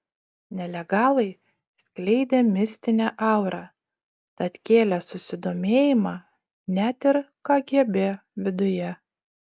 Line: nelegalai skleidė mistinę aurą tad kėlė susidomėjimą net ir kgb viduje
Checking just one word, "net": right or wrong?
right